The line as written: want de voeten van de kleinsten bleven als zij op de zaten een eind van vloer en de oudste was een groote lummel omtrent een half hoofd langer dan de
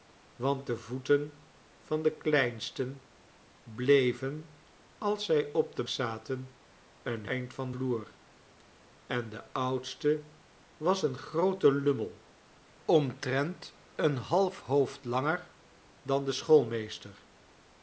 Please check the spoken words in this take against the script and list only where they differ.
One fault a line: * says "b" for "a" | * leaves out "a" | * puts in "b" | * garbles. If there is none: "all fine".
all fine